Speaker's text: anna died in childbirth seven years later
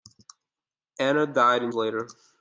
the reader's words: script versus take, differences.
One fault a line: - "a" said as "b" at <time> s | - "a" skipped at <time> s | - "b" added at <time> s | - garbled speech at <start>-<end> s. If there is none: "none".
- "childbirth seven years" skipped at 1.7 s